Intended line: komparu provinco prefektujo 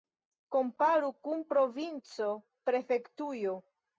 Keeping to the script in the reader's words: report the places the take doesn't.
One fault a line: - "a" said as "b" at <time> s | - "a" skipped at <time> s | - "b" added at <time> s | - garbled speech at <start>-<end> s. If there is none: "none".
- "kun" added at 1.3 s